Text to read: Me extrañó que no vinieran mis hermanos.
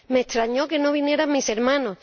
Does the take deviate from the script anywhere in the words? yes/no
no